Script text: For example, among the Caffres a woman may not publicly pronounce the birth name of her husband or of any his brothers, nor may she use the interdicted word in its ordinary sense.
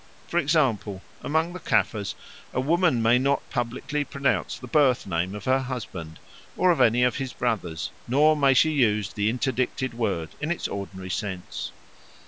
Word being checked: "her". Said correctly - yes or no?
yes